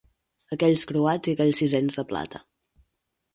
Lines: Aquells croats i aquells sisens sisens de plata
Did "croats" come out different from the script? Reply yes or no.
no